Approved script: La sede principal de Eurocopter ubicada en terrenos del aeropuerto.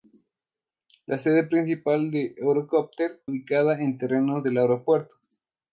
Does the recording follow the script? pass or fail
pass